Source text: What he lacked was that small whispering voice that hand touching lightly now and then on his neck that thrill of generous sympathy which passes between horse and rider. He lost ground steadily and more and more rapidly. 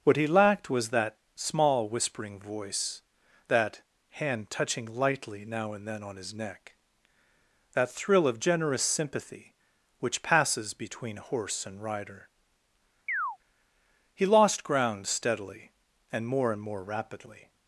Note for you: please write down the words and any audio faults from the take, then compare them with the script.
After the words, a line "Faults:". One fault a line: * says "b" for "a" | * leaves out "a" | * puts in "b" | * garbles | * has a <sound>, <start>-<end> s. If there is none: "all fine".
What he lacked was that small whispering voice that hand touching lightly now and then on his neck that thrill of generous sympathy which passes between horse and rider. He lost ground steadily and more and more rapidly.
Faults:
* has a chirp, 13.1-13.4 s